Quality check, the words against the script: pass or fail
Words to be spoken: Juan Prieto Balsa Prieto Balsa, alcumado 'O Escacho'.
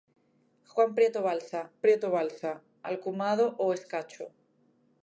pass